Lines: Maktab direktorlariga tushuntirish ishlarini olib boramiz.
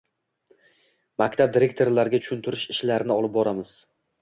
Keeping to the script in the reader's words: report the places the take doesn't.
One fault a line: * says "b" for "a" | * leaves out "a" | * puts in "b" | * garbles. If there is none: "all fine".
all fine